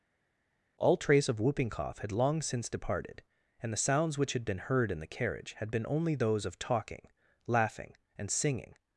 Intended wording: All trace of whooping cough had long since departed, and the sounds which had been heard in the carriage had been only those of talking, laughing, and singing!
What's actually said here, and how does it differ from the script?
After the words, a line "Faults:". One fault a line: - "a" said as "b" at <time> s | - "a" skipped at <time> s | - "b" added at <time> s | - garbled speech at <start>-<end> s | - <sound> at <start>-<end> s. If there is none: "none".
All trace of whooping cough had long since departed, and the sounds which had been heard in the carriage had been only those of talking, laughing, and singing!
Faults:
none